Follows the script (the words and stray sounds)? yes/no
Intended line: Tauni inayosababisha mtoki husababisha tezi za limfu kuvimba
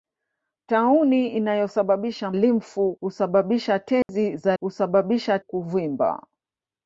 no